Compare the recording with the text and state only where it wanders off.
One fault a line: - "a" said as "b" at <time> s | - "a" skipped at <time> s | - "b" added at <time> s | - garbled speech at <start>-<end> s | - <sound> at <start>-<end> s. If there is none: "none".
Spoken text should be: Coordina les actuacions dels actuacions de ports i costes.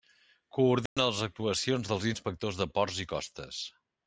- dropout at 0.9-1.0 s
- "actuacions" said as "inspectors" at 2.1 s